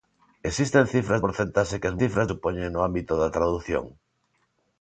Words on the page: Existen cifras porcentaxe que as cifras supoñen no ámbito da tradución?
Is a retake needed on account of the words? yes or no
no